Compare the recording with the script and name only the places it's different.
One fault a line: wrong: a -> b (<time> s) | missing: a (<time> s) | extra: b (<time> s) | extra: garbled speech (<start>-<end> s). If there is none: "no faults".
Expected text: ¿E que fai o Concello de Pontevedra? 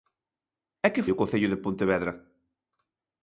missing: fai (1.1 s)